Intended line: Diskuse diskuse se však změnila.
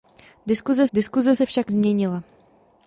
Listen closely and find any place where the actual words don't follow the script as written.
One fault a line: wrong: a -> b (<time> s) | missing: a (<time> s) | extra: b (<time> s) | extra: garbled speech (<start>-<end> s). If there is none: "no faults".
no faults